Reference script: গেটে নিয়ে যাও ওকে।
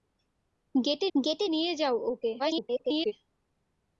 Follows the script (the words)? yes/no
no